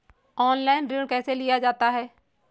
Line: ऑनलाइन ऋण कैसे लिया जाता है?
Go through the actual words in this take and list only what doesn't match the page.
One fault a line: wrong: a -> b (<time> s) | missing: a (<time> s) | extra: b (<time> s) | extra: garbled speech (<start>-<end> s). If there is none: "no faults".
no faults